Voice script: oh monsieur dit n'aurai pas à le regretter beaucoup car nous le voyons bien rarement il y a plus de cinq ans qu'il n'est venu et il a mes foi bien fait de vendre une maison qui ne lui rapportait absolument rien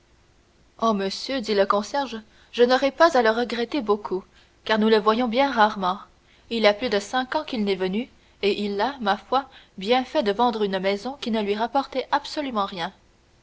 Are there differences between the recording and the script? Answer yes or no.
yes